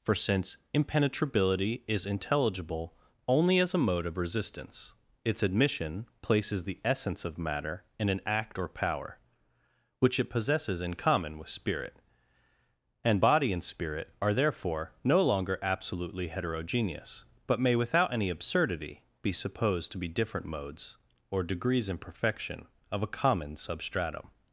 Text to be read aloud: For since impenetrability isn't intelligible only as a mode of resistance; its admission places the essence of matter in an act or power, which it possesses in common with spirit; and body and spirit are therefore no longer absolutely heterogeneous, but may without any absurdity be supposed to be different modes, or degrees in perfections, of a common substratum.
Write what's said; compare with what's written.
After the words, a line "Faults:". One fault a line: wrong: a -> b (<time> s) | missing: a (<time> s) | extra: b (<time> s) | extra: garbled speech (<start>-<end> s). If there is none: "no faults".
For since impenetrability is intelligible only as a mode of resistance; its admission places the essence of matter in an act or power, which it possesses in common with spirit; and body and spirit are therefore no longer absolutely heterogeneous, but may without any absurdity be supposed to be different modes, or degrees in perfection, of a common substratum.
Faults:
wrong: isn't -> is (1.9 s)
wrong: perfections -> perfection (22.0 s)